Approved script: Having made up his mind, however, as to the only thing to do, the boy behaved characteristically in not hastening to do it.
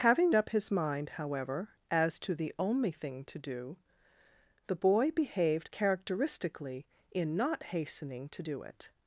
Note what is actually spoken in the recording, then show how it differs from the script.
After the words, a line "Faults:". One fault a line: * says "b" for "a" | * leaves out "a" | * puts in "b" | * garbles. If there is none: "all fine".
Having up his mind, however, as to the only thing to do, the boy behaved characteristically in not hastening to do it.
Faults:
* leaves out "made"